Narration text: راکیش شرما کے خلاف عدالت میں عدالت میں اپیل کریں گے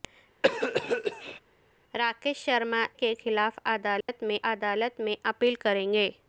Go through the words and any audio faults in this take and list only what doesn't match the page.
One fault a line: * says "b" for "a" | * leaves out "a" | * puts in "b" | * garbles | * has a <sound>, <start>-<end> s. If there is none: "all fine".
* has a cough, 0.4-1.4 s
* has a dropout, 4.0-4.1 s